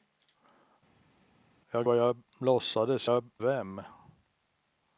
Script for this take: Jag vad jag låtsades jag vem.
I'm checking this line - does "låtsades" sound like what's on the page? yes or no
yes